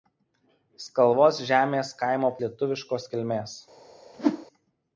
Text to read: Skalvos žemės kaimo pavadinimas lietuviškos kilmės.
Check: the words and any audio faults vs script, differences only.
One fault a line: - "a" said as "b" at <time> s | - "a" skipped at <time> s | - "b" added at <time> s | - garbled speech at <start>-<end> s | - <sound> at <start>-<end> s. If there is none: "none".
- "pavadinimas" skipped at 2.3 s
- whoosh at 4.1-4.5 s